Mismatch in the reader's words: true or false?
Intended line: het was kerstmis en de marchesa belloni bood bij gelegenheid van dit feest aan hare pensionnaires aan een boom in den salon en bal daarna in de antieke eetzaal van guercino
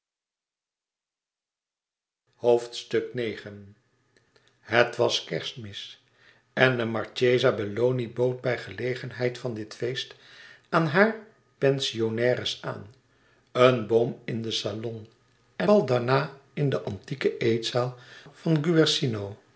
false